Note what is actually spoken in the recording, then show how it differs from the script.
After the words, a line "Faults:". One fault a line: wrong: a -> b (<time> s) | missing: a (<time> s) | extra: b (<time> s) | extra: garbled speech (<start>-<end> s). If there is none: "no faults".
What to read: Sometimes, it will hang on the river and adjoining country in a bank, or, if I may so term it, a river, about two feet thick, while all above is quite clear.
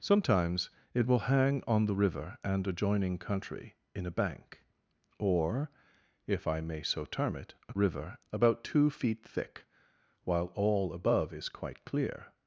Sometimes, it will hang on the river and adjoining country in a bank, or, if I may so term it, a river, about two feet thick, while all above is quite clear.
Faults:
no faults